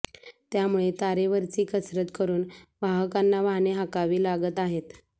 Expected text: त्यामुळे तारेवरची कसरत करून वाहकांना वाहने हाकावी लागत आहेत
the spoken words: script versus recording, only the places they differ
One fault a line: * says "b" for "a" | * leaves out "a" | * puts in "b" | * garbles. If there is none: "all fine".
all fine